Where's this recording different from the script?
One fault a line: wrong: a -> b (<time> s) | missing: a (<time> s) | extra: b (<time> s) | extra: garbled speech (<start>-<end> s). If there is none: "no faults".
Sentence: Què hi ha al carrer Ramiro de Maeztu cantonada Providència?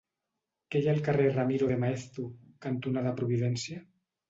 no faults